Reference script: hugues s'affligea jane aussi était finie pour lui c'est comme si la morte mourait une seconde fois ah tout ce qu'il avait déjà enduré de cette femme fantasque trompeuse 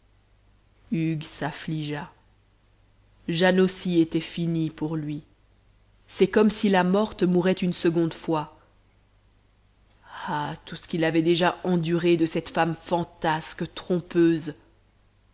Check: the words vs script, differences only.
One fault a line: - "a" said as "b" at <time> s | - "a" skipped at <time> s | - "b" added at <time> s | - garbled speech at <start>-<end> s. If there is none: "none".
none